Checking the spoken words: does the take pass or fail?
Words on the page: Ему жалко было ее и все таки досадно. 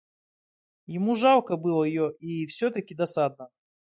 pass